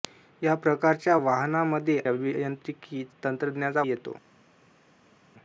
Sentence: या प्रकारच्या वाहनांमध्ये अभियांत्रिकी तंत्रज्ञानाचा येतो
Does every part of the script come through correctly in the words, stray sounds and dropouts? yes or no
yes